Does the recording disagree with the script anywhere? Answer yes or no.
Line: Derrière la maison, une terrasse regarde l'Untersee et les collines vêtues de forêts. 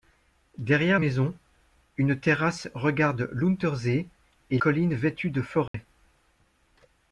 yes